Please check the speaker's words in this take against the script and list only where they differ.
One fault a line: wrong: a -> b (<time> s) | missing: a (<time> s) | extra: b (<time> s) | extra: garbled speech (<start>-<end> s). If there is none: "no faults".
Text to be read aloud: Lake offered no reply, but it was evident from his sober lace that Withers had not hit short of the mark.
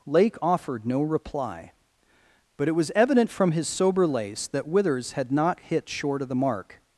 no faults